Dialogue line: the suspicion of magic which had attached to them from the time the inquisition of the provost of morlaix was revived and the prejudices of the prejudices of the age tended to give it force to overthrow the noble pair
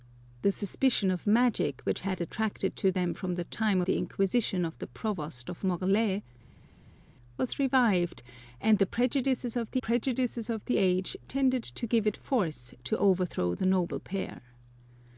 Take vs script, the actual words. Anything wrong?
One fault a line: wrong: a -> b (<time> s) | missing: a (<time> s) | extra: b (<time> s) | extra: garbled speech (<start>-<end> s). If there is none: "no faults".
no faults